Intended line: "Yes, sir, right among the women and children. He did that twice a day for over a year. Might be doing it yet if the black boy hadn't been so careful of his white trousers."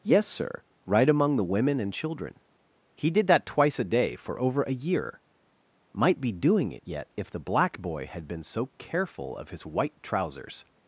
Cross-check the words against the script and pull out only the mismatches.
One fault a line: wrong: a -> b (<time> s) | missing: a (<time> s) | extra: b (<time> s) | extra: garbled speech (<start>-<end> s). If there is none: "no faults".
wrong: hadn't -> had (8.1 s)